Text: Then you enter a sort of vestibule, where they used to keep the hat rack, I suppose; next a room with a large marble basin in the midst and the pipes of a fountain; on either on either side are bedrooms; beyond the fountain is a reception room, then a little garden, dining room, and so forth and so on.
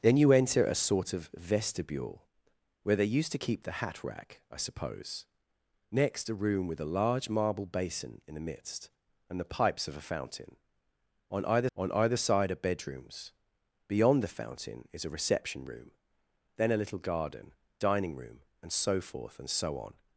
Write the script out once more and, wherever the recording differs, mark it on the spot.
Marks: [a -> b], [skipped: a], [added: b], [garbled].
Then you enter a sort of vestibule, where they used to keep the hat rack, I suppose; next a room with a large marble basin in the midst and the pipes of a fountain; on either on either side are bedrooms; beyond the fountain is a reception room, then a little garden, dining room, and so forth and so on.